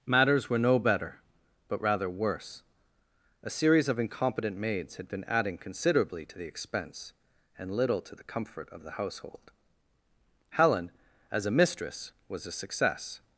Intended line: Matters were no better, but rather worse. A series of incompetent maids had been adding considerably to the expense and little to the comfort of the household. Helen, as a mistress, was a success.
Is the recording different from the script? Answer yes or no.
no